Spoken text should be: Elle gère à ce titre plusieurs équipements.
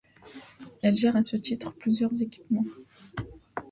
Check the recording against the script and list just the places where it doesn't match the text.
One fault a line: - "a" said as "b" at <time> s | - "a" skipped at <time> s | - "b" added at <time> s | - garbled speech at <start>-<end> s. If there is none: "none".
none